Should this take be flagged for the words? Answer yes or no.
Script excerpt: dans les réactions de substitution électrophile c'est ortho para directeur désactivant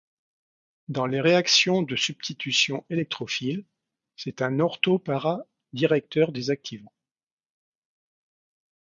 yes